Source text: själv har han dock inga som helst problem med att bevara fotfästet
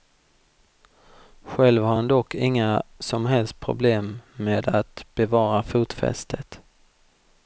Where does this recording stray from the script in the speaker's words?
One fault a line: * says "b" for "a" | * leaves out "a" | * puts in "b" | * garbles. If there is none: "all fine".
all fine